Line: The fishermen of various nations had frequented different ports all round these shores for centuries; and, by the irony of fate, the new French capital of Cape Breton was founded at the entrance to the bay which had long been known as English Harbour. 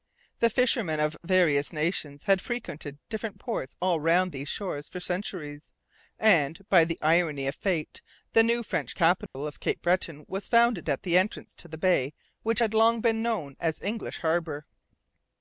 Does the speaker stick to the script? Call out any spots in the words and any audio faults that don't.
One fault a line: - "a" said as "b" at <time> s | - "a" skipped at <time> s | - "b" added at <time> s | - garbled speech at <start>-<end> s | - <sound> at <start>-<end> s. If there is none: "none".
- dropout at 9.3-9.3 s